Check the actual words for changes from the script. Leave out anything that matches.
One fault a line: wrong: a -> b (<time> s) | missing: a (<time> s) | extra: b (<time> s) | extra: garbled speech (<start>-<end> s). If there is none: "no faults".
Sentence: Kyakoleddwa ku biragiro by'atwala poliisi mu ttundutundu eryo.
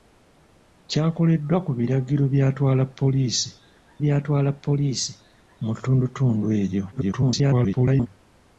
extra: by'atwala poliisi (4.0 s)
extra: garbled speech (6.9-8.1 s)